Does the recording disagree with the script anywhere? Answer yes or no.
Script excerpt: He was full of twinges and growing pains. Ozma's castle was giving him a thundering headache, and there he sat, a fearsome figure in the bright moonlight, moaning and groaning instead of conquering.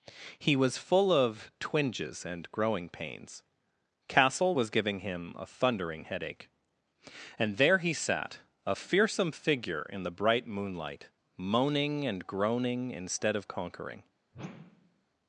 yes